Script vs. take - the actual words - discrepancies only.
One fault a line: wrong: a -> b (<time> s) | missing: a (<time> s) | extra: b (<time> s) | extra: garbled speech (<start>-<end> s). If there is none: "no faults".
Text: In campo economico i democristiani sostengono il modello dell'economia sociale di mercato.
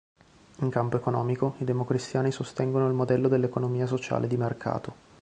no faults